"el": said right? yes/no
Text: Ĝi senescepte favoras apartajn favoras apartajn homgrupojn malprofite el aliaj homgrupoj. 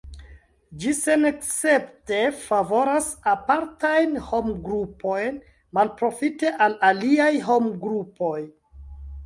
no